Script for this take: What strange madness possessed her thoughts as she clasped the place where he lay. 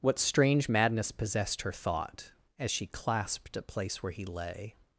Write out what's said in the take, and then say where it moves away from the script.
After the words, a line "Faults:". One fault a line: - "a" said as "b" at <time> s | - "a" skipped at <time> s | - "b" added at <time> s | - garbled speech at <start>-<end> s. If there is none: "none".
What strange madness possessed her thought as she clasped a place where he lay.
Faults:
- "thoughts" said as "thought" at 1.7 s
- "the" said as "a" at 3.6 s